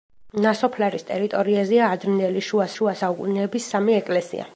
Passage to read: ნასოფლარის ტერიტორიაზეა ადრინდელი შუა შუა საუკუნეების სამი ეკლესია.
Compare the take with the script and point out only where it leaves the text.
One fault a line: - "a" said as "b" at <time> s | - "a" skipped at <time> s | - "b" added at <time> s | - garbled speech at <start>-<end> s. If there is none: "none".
none